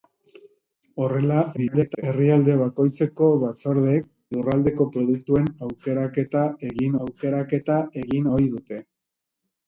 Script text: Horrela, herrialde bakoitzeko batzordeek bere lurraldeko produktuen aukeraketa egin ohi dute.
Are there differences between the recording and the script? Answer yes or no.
yes